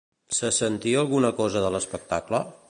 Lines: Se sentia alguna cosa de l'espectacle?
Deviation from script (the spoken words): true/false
false